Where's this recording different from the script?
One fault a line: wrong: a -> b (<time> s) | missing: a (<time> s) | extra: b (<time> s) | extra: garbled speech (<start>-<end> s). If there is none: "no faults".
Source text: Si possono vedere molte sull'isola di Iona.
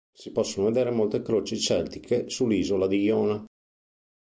extra: croci celtiche (1.2 s)